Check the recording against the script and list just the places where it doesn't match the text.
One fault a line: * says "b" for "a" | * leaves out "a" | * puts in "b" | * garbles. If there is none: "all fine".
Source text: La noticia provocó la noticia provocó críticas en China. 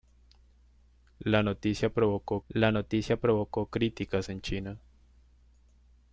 all fine